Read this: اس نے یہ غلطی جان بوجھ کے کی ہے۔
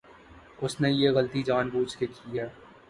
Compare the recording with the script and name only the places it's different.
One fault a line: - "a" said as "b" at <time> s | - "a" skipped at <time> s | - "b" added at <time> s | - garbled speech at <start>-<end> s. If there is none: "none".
none